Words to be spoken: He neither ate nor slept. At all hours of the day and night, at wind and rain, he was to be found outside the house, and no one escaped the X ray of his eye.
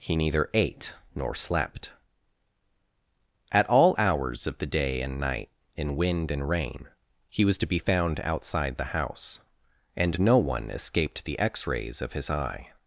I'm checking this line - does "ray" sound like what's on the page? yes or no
no